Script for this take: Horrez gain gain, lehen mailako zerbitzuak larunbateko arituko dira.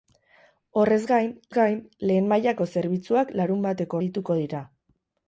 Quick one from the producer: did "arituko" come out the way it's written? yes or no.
yes